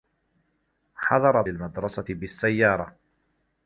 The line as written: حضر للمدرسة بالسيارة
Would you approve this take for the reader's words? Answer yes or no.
yes